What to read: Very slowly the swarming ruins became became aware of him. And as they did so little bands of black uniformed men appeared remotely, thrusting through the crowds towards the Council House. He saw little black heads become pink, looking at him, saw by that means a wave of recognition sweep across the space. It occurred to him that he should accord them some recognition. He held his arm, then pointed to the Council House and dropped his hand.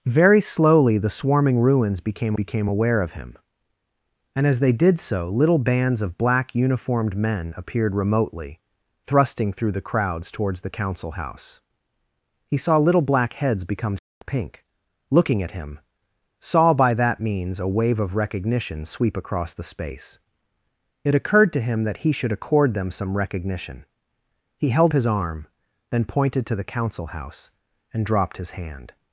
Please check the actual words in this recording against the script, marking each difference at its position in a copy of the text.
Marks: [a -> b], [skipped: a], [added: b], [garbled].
Very slowly the swarming ruins became became aware of him. And as they did so little bands of black uniformed men appeared remotely, thrusting through the crowds towards the Council House. He saw little black heads become pink, looking at him, saw by that means a wave of recognition sweep across the space. It occurred to him that he should accord them some recognition. He held his arm, then pointed to the Council House and dropped his hand.